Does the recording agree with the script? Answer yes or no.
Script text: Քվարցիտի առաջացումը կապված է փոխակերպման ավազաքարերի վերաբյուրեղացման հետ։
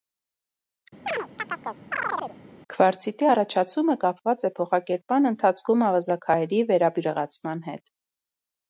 no